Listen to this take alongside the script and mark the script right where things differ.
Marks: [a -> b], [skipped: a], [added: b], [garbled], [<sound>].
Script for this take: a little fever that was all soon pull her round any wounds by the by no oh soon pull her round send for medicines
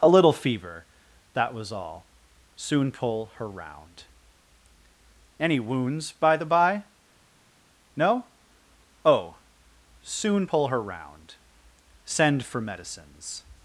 a little fever that was all soon pull her round any wounds by the by no oh soon pull her round send for medicines